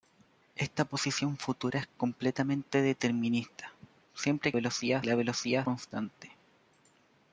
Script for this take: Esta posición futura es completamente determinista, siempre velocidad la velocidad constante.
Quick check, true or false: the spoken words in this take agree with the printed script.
true